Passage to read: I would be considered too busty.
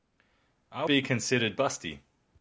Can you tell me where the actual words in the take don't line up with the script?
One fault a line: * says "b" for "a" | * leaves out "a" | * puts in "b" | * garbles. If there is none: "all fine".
* leaves out "would"
* leaves out "too"